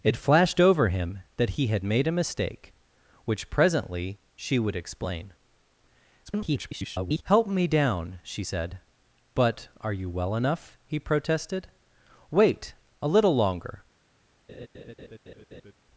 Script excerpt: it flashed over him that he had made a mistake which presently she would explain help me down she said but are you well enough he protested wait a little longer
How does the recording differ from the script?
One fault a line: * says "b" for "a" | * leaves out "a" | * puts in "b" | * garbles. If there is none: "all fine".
* garbles